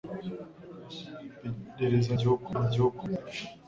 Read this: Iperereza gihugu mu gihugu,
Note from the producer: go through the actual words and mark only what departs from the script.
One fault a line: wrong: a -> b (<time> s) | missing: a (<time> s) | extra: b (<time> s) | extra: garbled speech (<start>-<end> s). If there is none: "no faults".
no faults